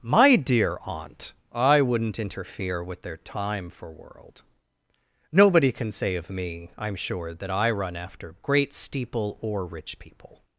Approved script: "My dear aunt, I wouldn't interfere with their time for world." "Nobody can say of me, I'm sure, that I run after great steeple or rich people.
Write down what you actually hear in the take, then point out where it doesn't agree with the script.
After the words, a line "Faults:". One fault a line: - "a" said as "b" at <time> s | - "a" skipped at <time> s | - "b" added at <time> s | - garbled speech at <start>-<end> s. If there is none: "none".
"My dear aunt, I wouldn't interfere with their time for world." "Nobody can say of me, I'm sure, that I run after great steeple or rich people.
Faults:
none